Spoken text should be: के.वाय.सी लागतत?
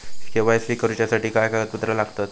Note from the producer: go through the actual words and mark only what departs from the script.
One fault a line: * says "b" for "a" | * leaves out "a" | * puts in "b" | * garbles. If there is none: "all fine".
* puts in "करूच्यासाठी काय कागदपत्रा"